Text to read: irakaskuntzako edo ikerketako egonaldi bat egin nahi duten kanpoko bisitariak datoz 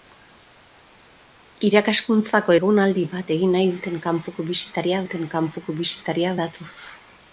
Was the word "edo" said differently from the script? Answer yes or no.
yes